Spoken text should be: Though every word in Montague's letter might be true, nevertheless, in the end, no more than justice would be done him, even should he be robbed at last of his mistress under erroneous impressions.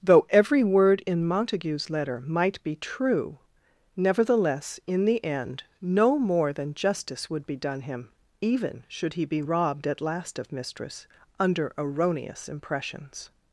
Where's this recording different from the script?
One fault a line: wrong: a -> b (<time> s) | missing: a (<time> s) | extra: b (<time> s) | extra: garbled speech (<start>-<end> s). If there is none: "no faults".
missing: his (10.5 s)